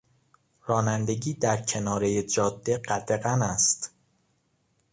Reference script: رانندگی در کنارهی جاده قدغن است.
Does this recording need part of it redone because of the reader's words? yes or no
no